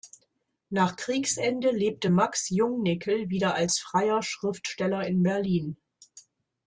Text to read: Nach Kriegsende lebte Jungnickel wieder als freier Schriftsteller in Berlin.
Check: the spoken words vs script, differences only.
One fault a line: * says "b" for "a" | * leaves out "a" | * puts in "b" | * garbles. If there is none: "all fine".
* puts in "Max"